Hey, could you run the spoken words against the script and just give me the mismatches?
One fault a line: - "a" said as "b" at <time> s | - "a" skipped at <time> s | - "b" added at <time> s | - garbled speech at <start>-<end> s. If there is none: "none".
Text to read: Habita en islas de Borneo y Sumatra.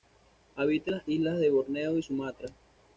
- "las" added at 1.0 s